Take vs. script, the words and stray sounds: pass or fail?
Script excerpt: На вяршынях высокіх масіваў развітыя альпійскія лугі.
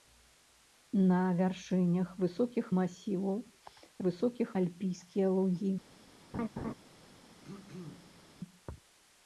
fail